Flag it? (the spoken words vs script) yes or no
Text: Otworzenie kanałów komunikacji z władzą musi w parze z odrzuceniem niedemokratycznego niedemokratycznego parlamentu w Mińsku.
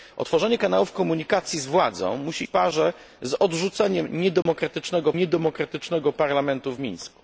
no